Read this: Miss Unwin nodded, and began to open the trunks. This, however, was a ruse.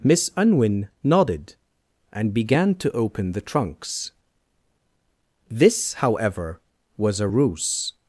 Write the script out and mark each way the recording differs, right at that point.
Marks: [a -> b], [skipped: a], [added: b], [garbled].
Miss Unwin nodded, and began to open the trunks. This, however, was a ruse.